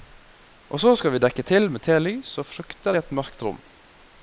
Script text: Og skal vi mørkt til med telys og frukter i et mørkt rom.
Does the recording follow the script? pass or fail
fail